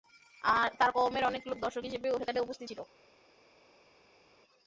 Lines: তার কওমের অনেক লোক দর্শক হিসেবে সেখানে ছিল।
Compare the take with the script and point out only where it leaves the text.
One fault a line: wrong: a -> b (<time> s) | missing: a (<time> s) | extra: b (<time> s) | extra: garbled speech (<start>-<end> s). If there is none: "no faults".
extra: উপস্থিত (2.4 s)